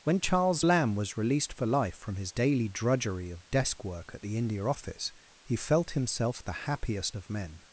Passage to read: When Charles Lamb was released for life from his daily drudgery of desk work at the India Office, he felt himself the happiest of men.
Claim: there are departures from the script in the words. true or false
false